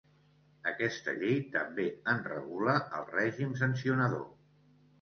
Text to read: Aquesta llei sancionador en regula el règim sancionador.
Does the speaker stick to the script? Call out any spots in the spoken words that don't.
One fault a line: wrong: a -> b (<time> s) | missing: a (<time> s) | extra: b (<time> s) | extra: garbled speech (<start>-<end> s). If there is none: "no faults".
wrong: sancionador -> també (1.6 s)